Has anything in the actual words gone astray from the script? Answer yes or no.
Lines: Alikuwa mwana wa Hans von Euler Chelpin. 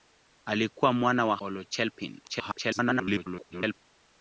yes